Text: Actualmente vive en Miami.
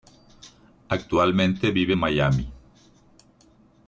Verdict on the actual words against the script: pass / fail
pass